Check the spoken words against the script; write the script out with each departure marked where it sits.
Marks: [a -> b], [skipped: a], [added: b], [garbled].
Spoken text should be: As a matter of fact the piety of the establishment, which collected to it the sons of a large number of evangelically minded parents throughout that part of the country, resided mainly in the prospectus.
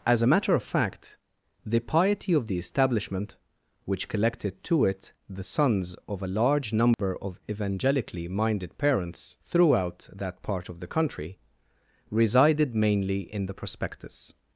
As a matter of fact the piety of the establishment, which collected to it the sons of a large number of evangelically minded parents throughout that part of the country, resided mainly in the prospectus.